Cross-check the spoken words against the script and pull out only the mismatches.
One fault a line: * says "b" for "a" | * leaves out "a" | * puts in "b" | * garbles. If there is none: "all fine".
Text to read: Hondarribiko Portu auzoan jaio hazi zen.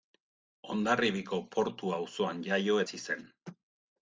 all fine